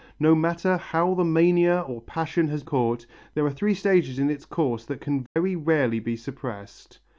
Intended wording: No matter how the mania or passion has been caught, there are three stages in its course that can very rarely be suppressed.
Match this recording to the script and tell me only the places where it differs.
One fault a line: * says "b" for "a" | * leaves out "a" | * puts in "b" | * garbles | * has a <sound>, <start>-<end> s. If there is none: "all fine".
* leaves out "been"
* has a dropout, 5.3-5.4 s